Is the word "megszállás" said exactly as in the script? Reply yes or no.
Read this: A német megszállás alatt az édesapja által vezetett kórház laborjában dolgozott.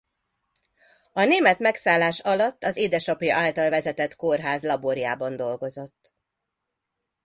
yes